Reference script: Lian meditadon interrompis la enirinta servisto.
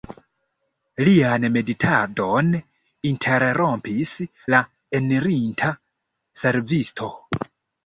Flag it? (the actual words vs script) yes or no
no